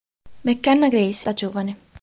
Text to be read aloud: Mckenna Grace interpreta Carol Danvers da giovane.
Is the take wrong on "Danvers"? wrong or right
wrong